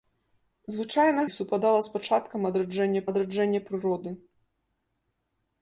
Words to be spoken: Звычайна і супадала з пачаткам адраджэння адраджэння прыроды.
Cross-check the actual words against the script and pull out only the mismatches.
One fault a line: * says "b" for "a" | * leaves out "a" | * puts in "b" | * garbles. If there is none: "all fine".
all fine